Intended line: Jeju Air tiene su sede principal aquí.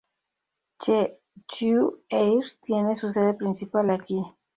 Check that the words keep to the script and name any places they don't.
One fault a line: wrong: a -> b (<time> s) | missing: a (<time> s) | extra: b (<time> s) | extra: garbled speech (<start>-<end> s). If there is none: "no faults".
no faults